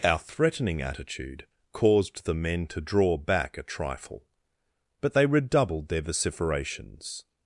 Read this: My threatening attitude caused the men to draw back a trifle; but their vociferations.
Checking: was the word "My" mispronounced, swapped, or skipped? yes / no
yes